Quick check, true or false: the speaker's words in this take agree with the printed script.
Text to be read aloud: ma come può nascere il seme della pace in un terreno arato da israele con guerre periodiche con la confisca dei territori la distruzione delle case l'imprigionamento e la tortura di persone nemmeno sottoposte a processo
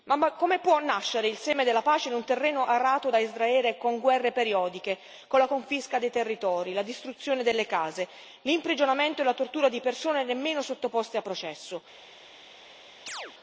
true